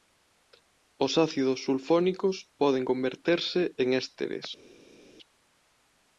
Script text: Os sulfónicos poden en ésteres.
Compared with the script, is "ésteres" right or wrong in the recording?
right